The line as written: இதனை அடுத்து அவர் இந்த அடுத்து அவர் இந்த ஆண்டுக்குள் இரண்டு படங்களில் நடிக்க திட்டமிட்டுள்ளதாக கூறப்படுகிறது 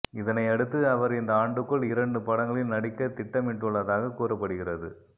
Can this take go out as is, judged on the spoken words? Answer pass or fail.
fail